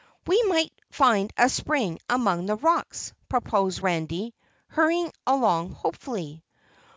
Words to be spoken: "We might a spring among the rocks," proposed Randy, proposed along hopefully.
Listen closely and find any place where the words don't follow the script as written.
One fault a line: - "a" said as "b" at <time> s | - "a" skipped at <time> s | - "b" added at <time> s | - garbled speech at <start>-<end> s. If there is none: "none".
- "find" added at 0.9 s
- "proposed" said as "hurrying" at 4.7 s